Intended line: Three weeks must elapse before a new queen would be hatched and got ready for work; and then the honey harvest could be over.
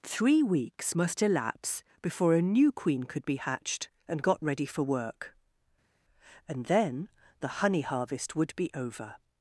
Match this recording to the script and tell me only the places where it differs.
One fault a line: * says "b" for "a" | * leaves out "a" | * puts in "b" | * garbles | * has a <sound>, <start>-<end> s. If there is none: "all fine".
* says "could" for "would"
* says "would" for "could"